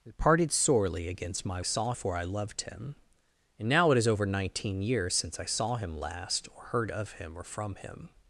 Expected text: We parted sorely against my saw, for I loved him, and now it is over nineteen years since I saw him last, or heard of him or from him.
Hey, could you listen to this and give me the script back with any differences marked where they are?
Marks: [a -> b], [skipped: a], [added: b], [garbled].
We parted sorely against my saw, for I loved him, and now it is over nineteen years since I saw him last, or heard of him or from him.